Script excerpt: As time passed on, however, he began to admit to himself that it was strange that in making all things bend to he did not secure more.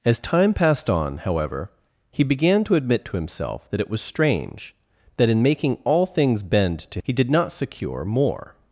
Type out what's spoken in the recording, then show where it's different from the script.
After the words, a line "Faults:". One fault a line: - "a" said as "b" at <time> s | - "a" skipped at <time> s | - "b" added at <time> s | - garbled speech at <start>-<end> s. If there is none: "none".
As time passed on, however, he began to admit to himself that it was strange that in making all things bend to he did not secure more.
Faults:
none